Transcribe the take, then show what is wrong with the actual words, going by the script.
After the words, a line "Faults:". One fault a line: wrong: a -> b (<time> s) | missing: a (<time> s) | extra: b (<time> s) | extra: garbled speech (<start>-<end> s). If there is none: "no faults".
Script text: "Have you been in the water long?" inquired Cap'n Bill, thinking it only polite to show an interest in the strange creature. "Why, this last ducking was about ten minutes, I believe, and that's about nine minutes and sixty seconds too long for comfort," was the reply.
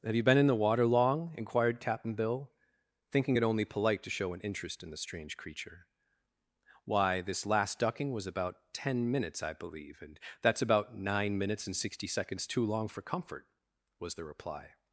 "Have you been in the water long?" inquired Cap'n Bill, thinking it only polite to show an interest in the strange creature. "Why, this last ducking was about ten minutes, I believe, and that's about nine minutes and sixty seconds too long for comfort," was the reply.
Faults:
no faults